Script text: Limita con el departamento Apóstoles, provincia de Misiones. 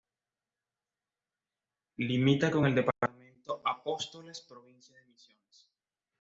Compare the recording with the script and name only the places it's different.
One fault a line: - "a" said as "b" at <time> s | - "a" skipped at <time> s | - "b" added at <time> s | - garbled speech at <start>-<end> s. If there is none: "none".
none